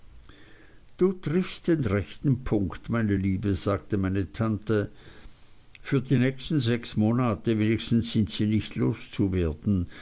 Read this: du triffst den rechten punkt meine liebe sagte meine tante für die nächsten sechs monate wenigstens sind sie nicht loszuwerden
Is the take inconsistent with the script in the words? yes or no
no